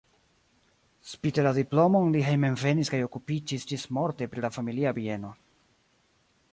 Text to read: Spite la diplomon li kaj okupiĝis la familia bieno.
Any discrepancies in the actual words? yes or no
yes